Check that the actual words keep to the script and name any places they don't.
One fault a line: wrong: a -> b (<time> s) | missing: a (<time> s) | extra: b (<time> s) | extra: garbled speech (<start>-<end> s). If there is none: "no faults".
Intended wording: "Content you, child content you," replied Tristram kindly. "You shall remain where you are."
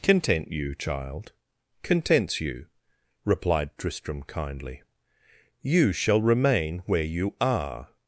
wrong: content -> contents (1.8 s)